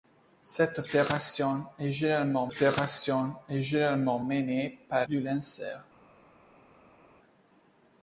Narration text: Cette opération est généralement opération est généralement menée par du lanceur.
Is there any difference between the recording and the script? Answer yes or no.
no